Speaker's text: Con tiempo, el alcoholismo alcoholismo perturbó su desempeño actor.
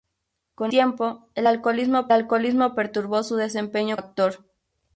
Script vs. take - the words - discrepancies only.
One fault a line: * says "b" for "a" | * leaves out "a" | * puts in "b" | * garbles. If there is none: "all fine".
all fine